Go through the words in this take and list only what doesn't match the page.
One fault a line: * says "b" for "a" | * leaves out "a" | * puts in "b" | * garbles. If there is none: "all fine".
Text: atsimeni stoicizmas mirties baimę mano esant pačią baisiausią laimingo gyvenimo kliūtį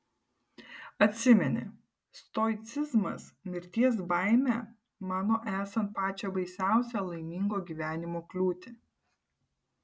all fine